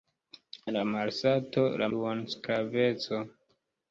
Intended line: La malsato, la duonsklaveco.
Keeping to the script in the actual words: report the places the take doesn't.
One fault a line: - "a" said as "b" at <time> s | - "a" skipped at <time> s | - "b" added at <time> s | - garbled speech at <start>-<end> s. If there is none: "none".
none